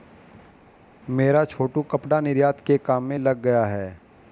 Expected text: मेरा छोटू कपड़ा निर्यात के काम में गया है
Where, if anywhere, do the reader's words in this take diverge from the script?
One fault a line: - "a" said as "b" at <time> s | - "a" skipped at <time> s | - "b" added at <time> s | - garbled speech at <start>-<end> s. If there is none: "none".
- "लग" added at 3.2 s